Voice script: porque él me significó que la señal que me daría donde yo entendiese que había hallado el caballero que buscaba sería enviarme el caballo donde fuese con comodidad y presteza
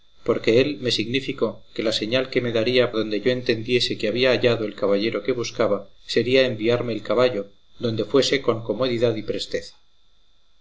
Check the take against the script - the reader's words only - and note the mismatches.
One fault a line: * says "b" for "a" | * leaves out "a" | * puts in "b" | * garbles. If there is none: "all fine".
all fine